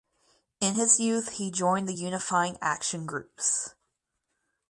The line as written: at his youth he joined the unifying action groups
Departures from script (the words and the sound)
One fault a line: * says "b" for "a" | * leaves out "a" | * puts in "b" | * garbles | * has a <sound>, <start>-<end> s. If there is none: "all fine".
* says "in" for "at"